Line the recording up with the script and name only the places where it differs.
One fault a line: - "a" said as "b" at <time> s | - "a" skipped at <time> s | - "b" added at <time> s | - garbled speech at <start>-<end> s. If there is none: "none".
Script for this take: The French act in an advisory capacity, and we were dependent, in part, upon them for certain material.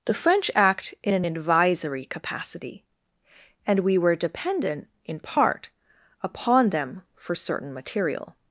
none